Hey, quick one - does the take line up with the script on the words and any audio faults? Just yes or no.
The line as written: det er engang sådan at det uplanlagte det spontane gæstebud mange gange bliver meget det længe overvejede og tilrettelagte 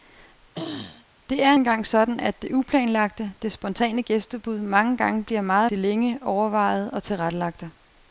no